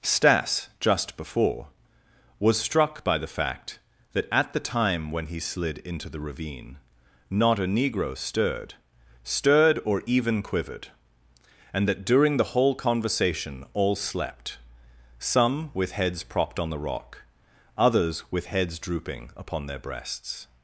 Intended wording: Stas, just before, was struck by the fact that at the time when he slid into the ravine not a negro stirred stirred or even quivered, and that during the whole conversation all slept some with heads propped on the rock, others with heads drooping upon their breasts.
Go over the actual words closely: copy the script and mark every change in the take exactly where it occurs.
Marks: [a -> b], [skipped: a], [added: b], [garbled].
Stas, just before, was struck by the fact that at the time when he slid into the ravine not a negro stirred stirred or even quivered, and that during the whole conversation all slept some with heads propped on the rock, others with heads drooping upon their breasts.